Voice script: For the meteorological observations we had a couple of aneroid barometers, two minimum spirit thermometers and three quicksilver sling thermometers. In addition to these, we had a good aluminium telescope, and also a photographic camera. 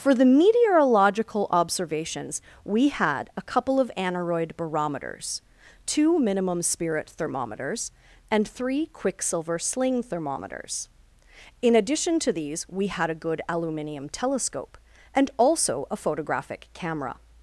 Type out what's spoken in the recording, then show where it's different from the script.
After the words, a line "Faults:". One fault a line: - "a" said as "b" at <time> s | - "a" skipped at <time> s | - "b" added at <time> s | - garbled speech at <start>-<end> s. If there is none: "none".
For the meteorological observations we had a couple of aneroid barometers, two minimum spirit thermometers and three quicksilver sling thermometers. In addition to these, we had a good aluminium telescope, and also a photographic camera.
Faults:
none